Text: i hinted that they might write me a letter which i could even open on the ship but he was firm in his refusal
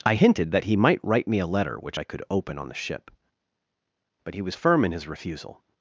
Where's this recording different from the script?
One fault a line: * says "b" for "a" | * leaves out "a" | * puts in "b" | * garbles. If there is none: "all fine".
* says "he" for "they"
* leaves out "even"